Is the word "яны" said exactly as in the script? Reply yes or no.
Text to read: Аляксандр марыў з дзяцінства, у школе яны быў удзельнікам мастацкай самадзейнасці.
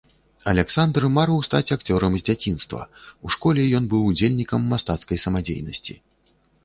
no